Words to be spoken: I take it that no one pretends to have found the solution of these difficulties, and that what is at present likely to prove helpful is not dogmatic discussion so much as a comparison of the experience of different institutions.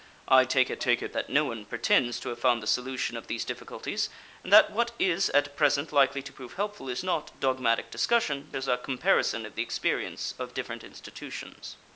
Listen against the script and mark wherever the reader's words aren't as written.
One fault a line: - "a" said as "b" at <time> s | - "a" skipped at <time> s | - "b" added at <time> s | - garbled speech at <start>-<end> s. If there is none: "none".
- "take it" added at 0.8 s
- "so much" skipped at 8.5 s